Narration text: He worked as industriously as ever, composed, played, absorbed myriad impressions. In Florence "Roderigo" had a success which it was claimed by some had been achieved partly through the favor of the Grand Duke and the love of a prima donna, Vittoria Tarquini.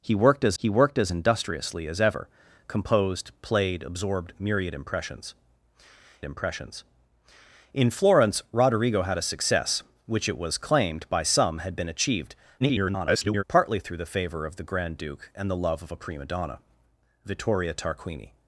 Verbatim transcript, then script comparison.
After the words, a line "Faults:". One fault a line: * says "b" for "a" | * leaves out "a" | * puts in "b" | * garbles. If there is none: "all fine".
He worked as he worked as industriously as ever, composed, played, absorbed myriad impressions impressions. In Florence "Roderigo" had a success which it was claimed by some had been achieved [garbled] partly through the favor of the Grand Duke and the love of a prima donna, Vittoria Tarquini.
Faults:
* puts in "he worked as"
* puts in "impressions"
* garbles